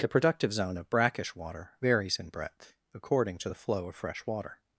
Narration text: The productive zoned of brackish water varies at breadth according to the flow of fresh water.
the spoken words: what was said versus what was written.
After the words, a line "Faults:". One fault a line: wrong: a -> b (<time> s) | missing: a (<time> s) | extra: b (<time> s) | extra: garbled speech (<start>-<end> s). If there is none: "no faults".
The productive zone of brackish water varies in breadth according to the flow of fresh water.
Faults:
wrong: zoned -> zone (0.5 s)
wrong: at -> in (2.2 s)